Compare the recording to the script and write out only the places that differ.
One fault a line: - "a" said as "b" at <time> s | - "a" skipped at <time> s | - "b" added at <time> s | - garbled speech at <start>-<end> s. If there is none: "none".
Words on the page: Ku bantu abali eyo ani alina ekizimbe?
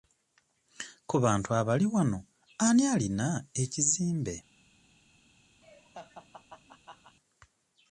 - "eyo" said as "wano" at 1.9 s